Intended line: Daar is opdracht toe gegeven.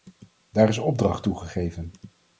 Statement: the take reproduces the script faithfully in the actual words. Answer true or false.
true